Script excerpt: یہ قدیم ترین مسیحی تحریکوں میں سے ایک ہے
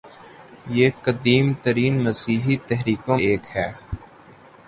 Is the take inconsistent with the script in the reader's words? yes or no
yes